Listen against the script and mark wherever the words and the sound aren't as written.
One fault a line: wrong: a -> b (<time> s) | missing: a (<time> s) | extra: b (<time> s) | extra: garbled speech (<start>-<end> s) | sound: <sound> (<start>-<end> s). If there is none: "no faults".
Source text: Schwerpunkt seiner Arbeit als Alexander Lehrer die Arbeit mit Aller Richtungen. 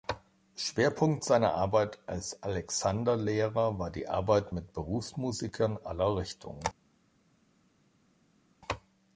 extra: war (3.8 s)
extra: Berufsmusikern (4.7 s)